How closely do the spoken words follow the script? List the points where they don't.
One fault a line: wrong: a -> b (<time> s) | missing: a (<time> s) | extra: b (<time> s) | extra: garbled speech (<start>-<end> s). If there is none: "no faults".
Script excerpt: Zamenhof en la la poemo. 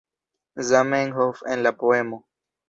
missing: la (1.7 s)